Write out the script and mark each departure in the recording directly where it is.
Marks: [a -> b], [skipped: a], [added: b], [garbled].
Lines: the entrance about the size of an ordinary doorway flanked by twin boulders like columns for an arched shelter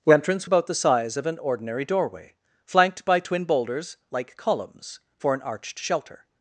the entrance about the size of an ordinary doorway flanked by twin boulders like columns for an arched shelter